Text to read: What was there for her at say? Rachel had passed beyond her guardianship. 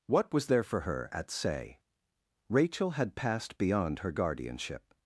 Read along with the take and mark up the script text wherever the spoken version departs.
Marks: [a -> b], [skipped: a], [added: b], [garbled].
What was there for her at say? Rachel had passed beyond her guardianship.